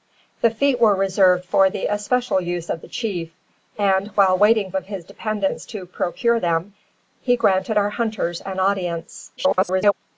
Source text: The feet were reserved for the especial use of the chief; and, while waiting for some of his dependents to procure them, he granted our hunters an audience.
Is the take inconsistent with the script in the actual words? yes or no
yes